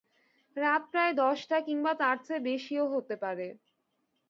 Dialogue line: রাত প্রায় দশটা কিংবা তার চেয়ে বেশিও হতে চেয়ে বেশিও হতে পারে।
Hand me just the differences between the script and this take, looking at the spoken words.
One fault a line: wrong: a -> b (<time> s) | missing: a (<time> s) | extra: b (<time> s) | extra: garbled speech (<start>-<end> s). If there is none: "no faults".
missing: চেয়ে বেশিও হতে (3.1 s)